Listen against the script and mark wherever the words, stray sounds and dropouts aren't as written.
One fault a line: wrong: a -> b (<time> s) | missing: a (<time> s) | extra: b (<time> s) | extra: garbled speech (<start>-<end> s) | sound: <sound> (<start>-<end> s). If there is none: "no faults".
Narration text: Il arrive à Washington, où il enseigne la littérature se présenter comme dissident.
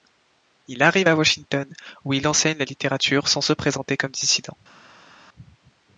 extra: sans (3.3 s)